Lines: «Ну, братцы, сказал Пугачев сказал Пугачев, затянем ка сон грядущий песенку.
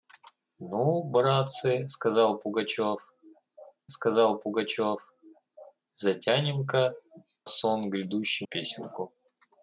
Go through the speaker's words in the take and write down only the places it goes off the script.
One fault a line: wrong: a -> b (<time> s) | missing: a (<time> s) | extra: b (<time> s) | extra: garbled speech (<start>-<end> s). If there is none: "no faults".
no faults